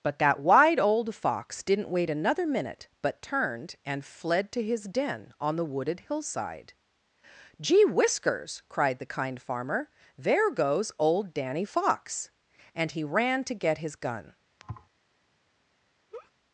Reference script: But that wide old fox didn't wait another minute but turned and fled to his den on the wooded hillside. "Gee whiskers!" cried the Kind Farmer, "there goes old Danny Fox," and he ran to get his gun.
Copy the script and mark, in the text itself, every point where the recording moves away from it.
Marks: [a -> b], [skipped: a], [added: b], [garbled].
But that wide old fox didn't wait another minute but turned and fled to his den on the wooded hillside. "Gee whiskers!" cried the Kind Farmer, "there goes old Danny Fox," and he ran to get his gun.